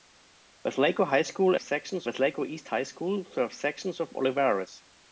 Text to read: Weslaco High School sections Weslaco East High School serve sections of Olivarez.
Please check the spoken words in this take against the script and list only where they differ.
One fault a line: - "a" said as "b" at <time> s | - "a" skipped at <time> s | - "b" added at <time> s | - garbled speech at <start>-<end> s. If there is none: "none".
none